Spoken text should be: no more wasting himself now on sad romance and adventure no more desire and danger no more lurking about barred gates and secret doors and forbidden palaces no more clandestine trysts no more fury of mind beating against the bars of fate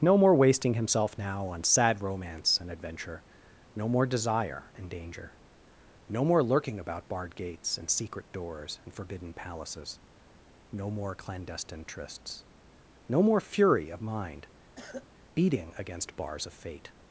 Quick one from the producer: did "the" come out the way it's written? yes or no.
no